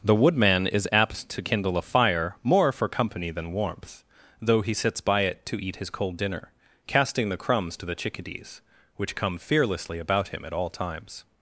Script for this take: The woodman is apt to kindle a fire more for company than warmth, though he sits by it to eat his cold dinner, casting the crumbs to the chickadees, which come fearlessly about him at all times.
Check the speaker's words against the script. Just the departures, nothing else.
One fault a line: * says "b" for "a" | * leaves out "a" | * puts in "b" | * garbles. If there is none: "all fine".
all fine